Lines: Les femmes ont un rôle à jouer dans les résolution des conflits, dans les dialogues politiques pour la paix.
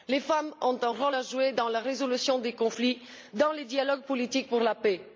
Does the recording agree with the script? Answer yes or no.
no